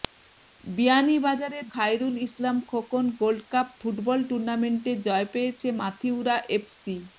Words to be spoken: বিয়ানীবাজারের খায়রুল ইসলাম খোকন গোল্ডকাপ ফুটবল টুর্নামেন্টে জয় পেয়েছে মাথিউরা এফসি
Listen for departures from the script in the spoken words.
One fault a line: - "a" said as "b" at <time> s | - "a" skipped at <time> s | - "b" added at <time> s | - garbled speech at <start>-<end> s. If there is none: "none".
none